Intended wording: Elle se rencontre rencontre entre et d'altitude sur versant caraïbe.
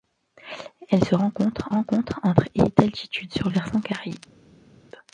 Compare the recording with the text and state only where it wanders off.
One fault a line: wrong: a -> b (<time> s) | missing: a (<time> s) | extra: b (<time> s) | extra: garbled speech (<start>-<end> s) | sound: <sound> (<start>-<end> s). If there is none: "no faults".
no faults